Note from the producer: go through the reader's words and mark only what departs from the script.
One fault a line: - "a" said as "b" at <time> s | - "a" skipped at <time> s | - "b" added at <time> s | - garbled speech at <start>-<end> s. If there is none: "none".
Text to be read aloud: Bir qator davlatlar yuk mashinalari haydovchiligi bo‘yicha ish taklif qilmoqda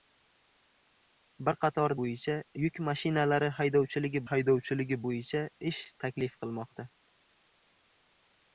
- "davlatlar" said as "bo‘yicha" at 2.0 s
- "haydovchiligi" added at 4.3 s